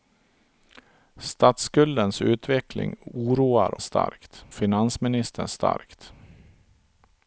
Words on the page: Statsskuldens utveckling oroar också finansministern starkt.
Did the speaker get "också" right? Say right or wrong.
wrong